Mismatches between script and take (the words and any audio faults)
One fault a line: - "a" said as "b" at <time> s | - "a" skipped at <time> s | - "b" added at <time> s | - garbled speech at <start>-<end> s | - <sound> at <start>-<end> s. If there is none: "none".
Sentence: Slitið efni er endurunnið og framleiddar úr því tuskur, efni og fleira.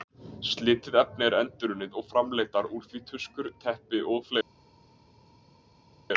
- "efni" said as "teppi" at 3.6 s